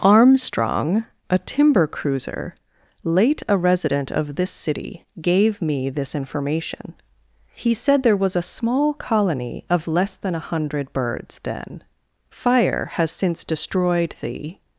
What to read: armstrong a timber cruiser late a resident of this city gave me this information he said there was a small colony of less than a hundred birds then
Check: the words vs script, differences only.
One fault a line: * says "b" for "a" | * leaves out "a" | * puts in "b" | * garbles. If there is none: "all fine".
* puts in "fire has since destroyed the"